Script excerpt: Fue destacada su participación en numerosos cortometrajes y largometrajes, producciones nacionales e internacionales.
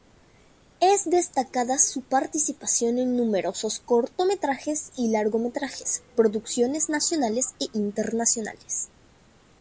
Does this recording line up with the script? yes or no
no